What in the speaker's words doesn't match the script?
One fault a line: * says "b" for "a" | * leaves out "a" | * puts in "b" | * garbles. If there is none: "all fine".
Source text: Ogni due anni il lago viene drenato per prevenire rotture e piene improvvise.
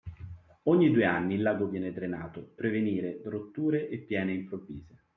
* leaves out "per"